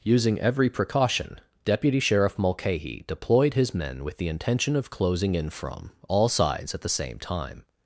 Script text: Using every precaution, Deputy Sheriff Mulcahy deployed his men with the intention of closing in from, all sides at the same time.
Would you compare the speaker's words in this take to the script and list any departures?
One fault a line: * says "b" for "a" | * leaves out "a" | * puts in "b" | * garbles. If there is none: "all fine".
all fine